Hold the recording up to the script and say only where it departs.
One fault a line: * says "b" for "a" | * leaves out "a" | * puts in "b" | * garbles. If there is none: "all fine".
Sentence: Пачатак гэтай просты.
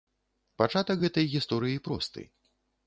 * puts in "гісторыі"